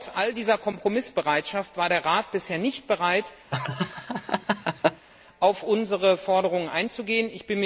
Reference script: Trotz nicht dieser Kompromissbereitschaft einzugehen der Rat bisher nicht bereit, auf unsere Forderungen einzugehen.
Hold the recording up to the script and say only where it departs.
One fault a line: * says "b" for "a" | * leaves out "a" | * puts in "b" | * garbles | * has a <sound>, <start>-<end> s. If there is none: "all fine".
* says "all" for "nicht"
* says "war" for "einzugehen"
* has a laugh, 3.5-5.1 s